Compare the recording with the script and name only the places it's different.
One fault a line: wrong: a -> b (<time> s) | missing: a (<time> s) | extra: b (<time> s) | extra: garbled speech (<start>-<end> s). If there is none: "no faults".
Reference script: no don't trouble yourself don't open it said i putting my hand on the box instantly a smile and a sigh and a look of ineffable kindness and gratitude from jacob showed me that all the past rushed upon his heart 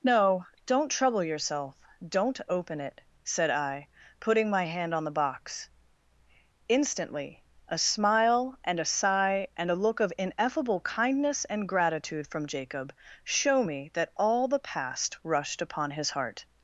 wrong: showed -> show (13.2 s)